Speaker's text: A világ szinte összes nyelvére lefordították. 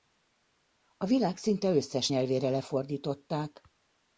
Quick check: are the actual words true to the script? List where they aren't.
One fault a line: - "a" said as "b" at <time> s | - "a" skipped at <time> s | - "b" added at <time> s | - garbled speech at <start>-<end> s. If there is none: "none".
none